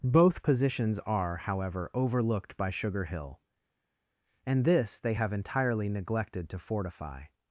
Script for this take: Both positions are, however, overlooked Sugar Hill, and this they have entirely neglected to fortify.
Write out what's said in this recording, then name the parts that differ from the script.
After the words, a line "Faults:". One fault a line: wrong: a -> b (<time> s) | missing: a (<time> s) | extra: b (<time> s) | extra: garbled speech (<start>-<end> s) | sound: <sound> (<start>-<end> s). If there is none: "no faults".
Both positions are, however, overlooked by Sugar Hill, and this they have entirely neglected to fortify.
Faults:
extra: by (2.6 s)